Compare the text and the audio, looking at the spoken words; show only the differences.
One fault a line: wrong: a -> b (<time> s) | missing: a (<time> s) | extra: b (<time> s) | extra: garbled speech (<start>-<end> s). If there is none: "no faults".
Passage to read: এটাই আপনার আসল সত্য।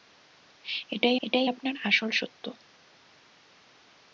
extra: এটাই (1.2 s)